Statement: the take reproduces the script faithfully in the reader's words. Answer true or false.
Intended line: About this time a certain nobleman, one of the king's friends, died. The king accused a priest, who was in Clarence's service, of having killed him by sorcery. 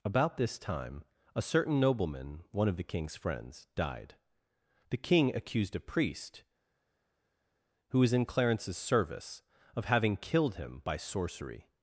true